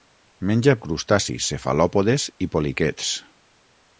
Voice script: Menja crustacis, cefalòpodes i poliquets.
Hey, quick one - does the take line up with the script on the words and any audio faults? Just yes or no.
yes